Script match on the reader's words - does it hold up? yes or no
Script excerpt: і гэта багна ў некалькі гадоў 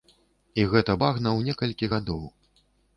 yes